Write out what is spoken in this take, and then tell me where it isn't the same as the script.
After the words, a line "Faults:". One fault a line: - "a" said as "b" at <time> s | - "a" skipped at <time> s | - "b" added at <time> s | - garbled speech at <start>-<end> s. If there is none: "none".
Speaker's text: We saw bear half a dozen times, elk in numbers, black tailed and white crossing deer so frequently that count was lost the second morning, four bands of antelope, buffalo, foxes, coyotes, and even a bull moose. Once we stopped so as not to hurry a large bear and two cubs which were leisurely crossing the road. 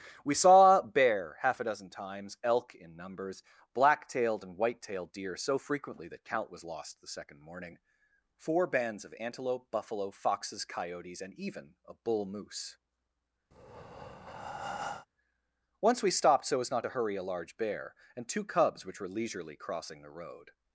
We saw bear half a dozen times, elk in numbers, black tailed and white tailed deer so frequently that count was lost the second morning, four bands of antelope, buffalo, foxes, coyotes, and even a bull moose. Once we stopped so as not to hurry a large bear and two cubs which were leisurely crossing the road.
Faults:
- "crossing" said as "tailed" at 4.8 s